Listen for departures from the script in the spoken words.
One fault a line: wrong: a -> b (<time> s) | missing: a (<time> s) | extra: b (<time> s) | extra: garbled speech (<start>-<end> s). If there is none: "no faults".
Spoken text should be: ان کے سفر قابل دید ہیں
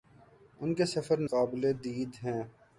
no faults